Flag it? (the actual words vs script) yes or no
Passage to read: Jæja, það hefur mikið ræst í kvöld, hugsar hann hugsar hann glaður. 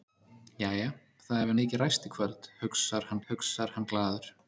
no